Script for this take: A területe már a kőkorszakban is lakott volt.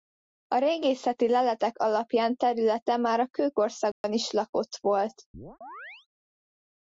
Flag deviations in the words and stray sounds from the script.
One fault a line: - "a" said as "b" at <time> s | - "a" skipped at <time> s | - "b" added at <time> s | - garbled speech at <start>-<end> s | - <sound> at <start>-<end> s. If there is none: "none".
- "régészeti leletek alapján" added at 0.6 s
- dropout at 3.9-4.0 s
- chirp at 5.3-6.1 s